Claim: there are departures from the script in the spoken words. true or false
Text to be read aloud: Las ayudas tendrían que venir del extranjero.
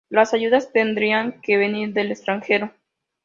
false